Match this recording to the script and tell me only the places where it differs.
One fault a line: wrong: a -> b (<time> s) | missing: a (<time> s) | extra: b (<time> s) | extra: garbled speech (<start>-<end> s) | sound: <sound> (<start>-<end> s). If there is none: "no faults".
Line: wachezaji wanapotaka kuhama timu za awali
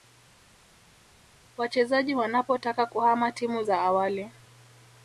no faults